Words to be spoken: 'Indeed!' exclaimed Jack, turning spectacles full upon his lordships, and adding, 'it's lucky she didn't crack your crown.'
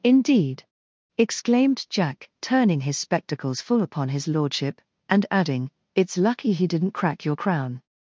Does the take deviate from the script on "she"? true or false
true